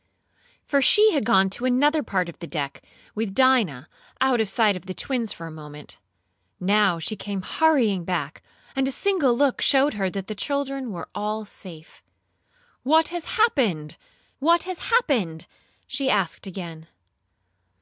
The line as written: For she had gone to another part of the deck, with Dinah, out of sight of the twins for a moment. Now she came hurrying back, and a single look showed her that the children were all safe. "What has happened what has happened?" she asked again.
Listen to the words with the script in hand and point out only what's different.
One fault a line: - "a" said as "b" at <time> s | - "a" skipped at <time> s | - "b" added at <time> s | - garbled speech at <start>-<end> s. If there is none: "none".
none